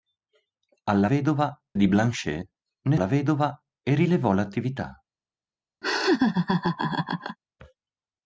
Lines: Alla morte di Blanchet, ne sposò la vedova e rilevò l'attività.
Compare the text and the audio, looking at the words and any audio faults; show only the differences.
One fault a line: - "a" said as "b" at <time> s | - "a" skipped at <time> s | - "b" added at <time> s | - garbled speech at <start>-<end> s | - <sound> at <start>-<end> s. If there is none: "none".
- "morte" said as "vedova" at 1.0 s
- "sposò" skipped at 3.0 s
- laugh at 5.8-7.4 s